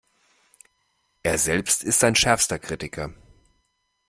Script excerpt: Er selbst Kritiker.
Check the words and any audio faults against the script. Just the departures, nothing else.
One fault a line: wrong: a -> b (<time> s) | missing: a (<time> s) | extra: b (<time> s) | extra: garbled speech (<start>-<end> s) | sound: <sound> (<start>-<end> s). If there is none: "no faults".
extra: ist sein schärfster (1.8 s)